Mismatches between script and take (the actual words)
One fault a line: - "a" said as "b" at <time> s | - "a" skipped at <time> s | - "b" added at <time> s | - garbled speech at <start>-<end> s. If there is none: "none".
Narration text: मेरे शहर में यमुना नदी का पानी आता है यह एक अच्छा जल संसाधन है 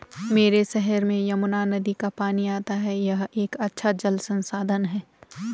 none